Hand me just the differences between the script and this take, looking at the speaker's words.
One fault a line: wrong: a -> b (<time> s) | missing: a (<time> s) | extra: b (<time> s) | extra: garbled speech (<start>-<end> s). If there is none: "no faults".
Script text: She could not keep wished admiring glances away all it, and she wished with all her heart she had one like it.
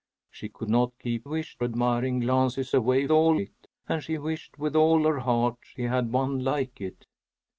no faults